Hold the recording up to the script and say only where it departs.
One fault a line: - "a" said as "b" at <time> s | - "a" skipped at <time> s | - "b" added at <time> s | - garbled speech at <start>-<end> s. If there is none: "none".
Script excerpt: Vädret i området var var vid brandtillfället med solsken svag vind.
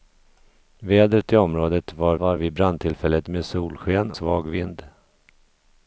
none